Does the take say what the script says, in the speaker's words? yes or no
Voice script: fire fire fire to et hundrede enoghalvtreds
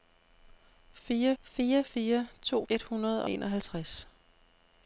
yes